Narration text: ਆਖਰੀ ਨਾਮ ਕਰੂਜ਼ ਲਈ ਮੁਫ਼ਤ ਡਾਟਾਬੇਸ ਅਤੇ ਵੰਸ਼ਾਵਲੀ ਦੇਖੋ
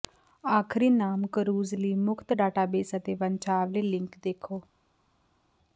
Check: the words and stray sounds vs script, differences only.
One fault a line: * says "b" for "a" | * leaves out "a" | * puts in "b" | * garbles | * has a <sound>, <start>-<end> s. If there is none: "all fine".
* puts in "ਲਿੰਕ"